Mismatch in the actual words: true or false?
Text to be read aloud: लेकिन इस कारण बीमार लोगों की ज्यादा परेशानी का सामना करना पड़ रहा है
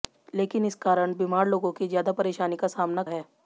true